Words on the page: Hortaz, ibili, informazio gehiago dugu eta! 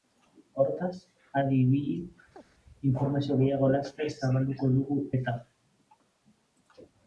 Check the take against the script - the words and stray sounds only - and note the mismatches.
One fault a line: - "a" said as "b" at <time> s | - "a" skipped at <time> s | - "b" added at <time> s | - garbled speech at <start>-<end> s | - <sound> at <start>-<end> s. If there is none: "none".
- "adi" added at 1.4 s
- chirp at 2.4-2.4 s
- "laster zabalduko" added at 3.7 s